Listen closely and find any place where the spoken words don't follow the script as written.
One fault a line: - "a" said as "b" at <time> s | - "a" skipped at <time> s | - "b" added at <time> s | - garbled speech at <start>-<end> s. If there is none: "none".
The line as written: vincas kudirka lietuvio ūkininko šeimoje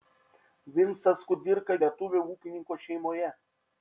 none